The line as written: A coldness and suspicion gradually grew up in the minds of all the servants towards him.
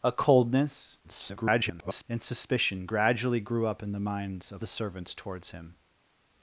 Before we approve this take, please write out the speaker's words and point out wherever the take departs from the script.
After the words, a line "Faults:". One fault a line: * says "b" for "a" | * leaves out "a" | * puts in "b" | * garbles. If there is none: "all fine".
A coldness [garbled] and suspicion gradually grew up in the minds of the servants towards him.
Faults:
* garbles
* leaves out "all"